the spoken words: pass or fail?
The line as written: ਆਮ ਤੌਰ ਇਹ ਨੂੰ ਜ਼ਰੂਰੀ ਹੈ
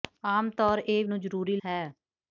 pass